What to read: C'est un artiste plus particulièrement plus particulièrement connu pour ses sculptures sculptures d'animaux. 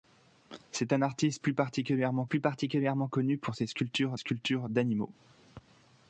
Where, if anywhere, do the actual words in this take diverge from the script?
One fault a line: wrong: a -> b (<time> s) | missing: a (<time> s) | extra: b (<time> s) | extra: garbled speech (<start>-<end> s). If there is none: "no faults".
no faults